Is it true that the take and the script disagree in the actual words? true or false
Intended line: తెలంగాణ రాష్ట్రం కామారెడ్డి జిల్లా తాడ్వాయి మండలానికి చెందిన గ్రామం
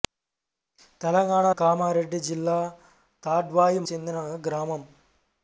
true